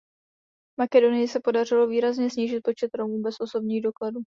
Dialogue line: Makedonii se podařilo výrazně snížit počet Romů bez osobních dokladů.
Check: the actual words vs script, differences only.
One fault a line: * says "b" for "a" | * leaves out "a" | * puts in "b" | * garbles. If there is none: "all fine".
all fine